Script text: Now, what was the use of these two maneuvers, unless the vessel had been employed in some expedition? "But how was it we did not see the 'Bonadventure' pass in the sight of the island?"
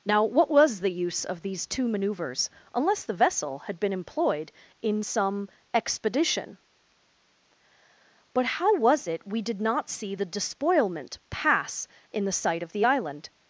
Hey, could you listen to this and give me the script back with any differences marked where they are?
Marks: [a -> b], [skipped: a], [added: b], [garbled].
Now, what was the use of these two maneuvers, unless the vessel had been employed in some expedition? "But how was it we did not see the ['Bonadventure' -> Despoilment] pass in the sight of the island?"